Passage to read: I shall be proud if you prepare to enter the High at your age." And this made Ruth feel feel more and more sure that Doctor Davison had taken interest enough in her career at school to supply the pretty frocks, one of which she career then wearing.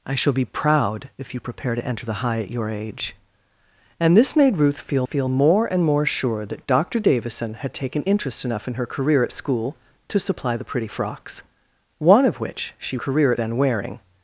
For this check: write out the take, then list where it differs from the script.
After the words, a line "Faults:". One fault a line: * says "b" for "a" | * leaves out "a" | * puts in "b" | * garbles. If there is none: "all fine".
I shall be proud if you prepare to enter the High at your age." And this made Ruth feel feel more and more sure that Doctor Davison had taken interest enough in her career at school to supply the pretty frocks, one of which she career then wearing.
Faults:
all fine